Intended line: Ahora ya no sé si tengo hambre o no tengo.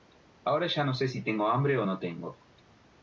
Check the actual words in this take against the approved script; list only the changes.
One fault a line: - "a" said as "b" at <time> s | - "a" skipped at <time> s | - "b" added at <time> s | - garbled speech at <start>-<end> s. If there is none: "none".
none